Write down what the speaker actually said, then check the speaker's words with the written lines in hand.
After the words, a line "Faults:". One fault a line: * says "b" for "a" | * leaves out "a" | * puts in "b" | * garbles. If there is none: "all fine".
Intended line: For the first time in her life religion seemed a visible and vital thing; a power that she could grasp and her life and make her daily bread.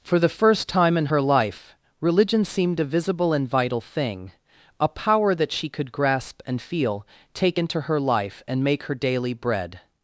For the first time in her life religion seemed a visible and vital thing; a power that she could grasp and feel, take into her life and make her daily bread.
Faults:
* puts in "feel take into"